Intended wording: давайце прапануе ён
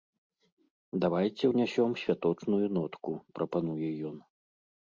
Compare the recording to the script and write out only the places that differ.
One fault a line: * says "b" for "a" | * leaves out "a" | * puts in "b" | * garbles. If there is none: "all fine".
* puts in "ўнясём святочную нотку"